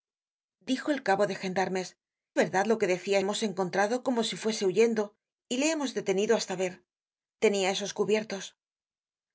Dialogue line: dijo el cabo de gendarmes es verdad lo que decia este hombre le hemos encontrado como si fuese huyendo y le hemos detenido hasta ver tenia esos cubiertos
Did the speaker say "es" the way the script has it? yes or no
no